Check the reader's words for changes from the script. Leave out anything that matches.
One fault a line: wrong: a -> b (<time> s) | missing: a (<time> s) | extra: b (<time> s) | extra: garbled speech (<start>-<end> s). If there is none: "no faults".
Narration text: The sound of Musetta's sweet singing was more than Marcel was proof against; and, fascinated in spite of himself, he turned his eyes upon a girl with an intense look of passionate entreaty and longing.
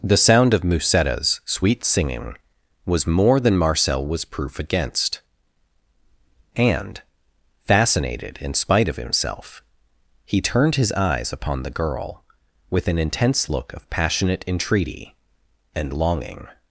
wrong: a -> the (11.6 s)